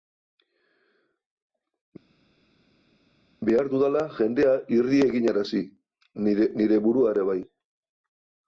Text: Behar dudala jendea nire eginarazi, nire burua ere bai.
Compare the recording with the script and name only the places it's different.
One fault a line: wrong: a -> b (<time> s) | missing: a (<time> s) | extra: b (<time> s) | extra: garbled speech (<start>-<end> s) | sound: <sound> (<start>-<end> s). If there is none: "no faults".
wrong: nire -> irri (4.8 s)